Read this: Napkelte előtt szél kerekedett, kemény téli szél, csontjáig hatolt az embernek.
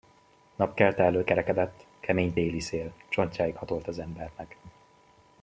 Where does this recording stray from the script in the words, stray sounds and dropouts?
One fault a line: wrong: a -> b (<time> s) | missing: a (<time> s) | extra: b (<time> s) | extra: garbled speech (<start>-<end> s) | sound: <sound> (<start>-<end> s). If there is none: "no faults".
missing: szél (1.3 s)